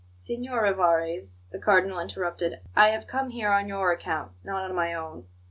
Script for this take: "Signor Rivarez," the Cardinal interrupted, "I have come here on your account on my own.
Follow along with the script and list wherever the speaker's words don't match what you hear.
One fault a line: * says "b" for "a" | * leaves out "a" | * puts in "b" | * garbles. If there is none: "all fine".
* puts in "not"